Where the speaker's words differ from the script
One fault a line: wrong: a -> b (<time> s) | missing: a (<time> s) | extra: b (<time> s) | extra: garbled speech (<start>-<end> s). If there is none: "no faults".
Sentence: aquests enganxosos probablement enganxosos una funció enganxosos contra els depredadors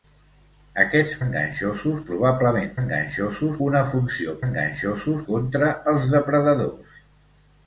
no faults